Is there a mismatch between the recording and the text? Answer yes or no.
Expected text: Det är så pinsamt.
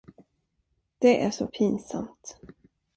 no